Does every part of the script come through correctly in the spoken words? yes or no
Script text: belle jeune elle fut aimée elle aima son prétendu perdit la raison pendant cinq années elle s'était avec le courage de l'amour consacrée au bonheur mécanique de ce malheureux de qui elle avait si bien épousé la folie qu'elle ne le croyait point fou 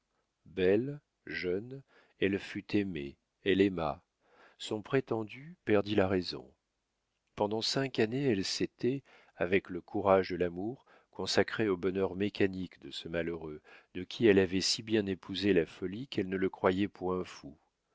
yes